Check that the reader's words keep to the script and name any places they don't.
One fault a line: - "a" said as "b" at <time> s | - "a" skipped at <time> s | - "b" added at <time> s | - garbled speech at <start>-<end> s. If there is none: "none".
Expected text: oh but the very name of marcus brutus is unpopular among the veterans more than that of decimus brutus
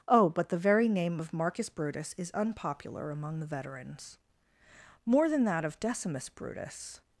none